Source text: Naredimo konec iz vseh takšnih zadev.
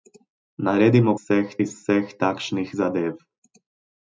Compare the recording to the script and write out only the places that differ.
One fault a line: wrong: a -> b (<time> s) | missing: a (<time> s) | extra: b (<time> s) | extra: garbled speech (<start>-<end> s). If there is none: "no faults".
wrong: konec -> vseh (1.2 s)